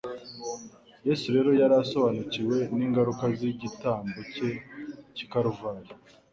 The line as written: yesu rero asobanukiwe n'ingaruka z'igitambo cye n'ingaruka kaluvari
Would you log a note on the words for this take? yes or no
yes